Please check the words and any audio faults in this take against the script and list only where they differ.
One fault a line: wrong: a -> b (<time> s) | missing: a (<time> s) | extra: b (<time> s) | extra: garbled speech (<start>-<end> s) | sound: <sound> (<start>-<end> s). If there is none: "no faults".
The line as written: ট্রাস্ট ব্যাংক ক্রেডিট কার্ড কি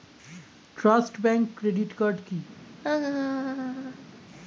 sound: laugh (2.8-4.1 s)